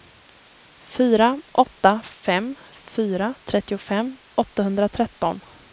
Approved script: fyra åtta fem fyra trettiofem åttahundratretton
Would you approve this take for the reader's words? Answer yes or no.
yes